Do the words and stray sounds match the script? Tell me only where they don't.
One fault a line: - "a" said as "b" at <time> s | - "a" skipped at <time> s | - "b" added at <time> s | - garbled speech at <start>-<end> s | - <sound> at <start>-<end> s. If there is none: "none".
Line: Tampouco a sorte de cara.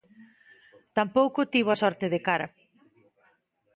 - "tivo" added at 1.5 s